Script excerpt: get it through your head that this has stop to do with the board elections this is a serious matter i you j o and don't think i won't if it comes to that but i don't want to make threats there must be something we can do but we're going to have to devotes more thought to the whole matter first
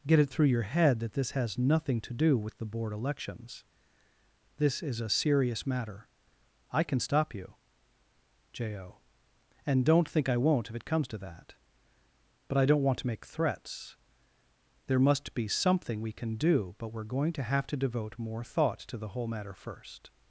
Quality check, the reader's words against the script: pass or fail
fail